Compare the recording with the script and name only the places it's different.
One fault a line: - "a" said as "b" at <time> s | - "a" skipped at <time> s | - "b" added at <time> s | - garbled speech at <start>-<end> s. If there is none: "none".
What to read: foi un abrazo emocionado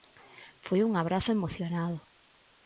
none